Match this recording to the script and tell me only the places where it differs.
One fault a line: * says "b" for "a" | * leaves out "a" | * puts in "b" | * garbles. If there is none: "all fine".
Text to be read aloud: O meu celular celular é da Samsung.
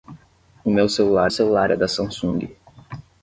all fine